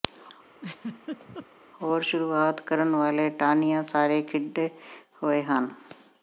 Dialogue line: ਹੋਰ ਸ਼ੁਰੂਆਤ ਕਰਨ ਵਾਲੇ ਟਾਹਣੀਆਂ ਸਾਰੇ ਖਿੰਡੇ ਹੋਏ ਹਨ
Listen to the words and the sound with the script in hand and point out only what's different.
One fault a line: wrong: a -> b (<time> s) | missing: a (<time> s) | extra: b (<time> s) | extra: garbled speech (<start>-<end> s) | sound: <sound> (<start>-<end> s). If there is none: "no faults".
sound: laugh (0.5-1.5 s)